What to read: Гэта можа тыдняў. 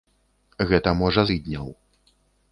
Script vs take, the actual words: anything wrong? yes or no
no